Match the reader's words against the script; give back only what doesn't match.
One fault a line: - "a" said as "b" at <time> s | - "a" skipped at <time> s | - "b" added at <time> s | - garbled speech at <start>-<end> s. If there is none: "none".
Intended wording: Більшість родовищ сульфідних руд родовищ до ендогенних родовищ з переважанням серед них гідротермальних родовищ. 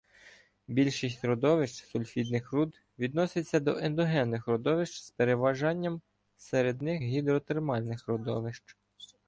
- "родовищ" said as "відноситься" at 3.0 s